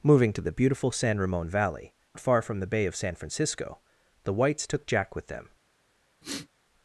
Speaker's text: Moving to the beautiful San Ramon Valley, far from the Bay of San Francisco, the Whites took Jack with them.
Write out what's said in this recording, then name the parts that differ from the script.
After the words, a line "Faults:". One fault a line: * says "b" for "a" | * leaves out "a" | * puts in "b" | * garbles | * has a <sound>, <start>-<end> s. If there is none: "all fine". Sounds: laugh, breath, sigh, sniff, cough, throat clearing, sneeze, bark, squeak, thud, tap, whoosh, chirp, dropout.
Moving to the beautiful San Ramon Valley, far from the Bay of San Francisco, the Whites took Jack with them.
Faults:
* has a sniff, 6.2-6.5 s